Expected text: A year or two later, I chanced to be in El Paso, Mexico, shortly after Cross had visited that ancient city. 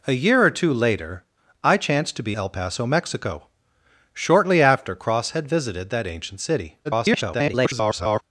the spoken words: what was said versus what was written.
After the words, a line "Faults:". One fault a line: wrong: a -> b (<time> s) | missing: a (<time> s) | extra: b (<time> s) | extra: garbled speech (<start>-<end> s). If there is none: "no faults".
A year or two later, I chanced to be El Paso, Mexico, shortly after Cross had visited that ancient city. [garbled]
Faults:
missing: in (2.4 s)
extra: garbled speech (6.8-8.2 s)